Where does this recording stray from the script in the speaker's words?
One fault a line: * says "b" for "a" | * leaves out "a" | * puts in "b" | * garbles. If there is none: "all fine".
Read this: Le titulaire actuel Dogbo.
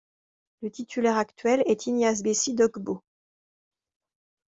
* puts in "est Ignace Bessi"